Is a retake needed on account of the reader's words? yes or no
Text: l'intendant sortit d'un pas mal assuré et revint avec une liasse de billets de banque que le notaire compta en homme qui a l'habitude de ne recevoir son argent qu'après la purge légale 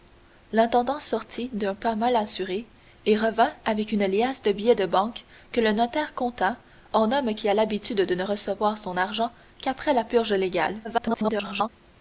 yes